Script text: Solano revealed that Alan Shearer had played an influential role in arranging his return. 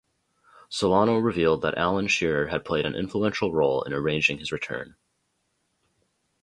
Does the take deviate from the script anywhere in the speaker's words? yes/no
no